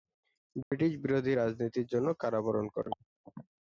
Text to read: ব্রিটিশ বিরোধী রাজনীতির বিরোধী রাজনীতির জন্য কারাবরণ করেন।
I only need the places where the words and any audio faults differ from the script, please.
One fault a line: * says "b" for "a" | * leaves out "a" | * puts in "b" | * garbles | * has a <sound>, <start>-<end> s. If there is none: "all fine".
* has a dropout, 0.6-0.7 s
* leaves out "বিরোধী রাজনীতির"